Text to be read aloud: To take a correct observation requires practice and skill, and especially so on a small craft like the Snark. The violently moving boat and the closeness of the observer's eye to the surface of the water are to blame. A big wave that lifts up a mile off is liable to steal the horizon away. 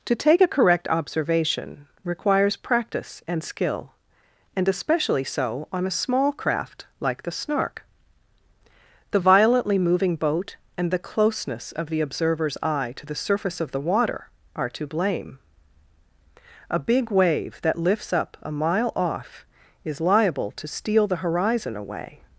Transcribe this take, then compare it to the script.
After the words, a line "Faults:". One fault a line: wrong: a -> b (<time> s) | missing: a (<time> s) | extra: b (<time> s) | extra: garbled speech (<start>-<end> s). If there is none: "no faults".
To take a correct observation requires practice and skill, and especially so on a small craft like the Snark. The violently moving boat and the closeness of the observer's eye to the surface of the water are to blame. A big wave that lifts up a mile off is liable to steal the horizon away.
Faults:
no faults